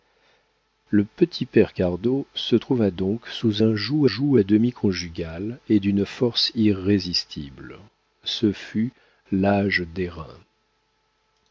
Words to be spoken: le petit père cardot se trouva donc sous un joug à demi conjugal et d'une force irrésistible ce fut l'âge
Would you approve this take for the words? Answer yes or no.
no